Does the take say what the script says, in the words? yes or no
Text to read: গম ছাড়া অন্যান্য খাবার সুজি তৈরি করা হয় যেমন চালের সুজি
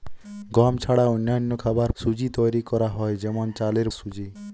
yes